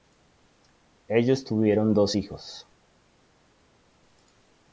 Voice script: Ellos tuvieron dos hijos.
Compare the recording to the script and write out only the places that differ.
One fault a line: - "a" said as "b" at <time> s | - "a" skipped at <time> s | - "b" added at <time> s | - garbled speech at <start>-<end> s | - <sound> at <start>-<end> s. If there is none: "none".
none